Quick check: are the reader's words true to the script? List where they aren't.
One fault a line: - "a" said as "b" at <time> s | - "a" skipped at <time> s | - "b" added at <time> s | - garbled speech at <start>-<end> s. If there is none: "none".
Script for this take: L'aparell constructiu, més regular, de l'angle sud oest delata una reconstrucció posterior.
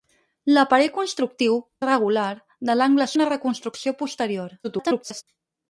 - "més" skipped at 1.6 s
- "sud oest delata" skipped at 3.1 s
- garbled speech at 4.6-5.2 s